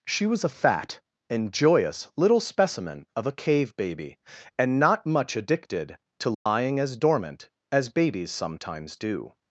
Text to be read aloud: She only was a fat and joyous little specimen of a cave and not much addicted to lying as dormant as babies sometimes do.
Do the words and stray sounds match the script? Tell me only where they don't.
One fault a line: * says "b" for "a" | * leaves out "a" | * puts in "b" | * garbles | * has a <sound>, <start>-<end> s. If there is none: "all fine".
* leaves out "only"
* puts in "baby"
* has a dropout, 6.3-6.5 s